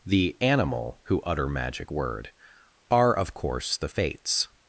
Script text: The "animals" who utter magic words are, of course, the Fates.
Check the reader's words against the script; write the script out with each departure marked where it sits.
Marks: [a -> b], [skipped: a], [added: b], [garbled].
The ["animals" -> animal] who utter magic [words -> word] are, of course, the Fates.